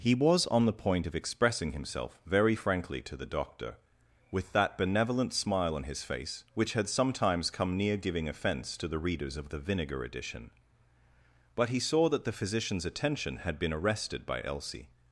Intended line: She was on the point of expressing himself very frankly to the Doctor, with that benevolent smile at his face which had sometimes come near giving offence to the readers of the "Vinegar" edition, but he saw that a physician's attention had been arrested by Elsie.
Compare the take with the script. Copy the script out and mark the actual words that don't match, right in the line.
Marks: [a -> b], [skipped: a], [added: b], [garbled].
[She -> He] was on the point of expressing himself very frankly to the Doctor, with that benevolent smile [at -> on] his face which had sometimes come near giving offence to the readers of the "Vinegar" edition, but he saw that [a -> the] physician's attention had been arrested by Elsie.